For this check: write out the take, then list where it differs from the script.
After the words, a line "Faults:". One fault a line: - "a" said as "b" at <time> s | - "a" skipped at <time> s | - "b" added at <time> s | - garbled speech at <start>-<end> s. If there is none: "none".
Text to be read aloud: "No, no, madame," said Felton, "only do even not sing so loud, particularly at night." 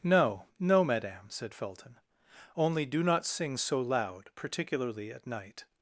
"No, no, madame," said Felton, "only do not sing so loud, particularly at night."
Faults:
- "even" skipped at 3.0 s